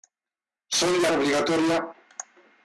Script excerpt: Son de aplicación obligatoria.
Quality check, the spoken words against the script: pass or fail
fail